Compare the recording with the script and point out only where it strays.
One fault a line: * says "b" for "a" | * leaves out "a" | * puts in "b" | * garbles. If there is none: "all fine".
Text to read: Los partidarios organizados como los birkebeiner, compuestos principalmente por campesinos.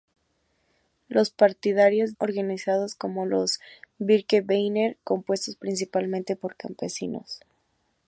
all fine